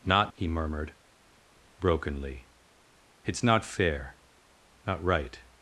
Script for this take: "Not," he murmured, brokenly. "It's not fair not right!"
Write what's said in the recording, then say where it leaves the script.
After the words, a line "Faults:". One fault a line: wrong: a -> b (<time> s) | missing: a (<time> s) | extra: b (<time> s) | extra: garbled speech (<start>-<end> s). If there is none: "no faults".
"Not," he murmured, brokenly. "It's not fair not right!"
Faults:
no faults